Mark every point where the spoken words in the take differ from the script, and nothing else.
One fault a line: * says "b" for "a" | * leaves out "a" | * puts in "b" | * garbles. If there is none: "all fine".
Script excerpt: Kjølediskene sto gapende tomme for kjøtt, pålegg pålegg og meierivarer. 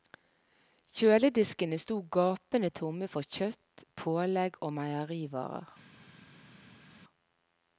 * leaves out "pålegg"